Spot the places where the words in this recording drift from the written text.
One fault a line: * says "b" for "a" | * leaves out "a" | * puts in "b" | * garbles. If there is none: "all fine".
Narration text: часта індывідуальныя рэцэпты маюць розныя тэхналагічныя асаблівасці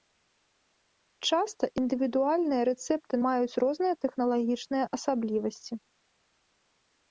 all fine